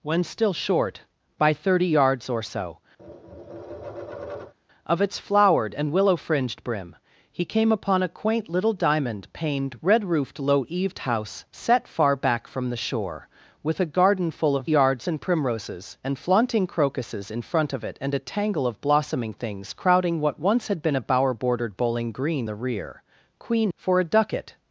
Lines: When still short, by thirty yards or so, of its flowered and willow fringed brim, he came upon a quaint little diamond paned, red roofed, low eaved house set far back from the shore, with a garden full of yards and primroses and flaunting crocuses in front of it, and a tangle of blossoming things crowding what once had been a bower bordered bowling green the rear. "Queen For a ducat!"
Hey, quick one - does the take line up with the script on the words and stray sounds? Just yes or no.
no